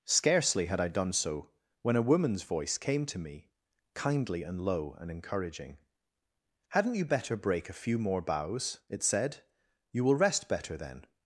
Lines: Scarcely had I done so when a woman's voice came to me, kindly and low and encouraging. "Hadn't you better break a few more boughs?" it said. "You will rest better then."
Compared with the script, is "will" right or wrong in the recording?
right